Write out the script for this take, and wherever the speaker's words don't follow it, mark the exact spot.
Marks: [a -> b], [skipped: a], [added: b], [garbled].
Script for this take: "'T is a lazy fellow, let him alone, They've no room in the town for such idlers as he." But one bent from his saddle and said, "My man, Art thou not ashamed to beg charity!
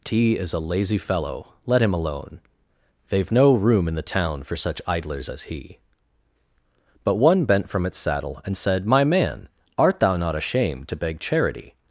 "'T is a lazy fellow, let him alone, They've no room in the town for such idlers as he." But one bent from [his -> its] saddle and said, "My man, Art thou not ashamed to beg charity!